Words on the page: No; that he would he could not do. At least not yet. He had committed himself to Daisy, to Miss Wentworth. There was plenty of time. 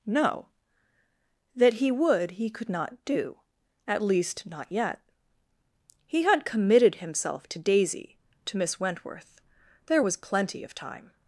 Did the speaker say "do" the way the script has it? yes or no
yes